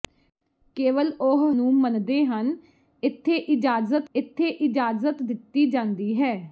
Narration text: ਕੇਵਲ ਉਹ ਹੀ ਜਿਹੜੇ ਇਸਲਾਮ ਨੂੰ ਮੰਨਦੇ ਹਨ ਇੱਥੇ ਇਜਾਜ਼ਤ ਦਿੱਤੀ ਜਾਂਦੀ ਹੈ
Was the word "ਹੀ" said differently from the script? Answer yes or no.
yes